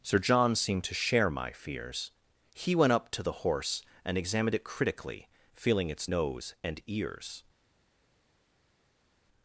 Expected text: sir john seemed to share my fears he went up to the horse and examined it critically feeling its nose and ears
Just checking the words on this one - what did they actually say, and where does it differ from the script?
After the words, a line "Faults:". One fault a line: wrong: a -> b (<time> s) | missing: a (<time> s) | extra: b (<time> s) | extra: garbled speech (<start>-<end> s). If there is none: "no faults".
sir john seemed to share my fears he went up to the horse and examined it critically feeling its nose and ears
Faults:
no faults